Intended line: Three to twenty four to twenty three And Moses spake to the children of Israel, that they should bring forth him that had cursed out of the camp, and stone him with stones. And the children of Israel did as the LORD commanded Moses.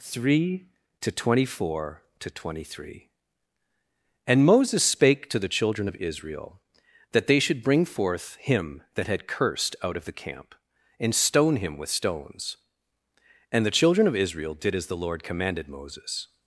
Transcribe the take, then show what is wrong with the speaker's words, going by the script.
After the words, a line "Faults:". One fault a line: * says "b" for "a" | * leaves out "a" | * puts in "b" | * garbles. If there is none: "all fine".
Three to twenty four to twenty three And Moses spake to the children of Israel, that they should bring forth him that had cursed out of the camp, and stone him with stones. And the children of Israel did as the LORD commanded Moses.
Faults:
all fine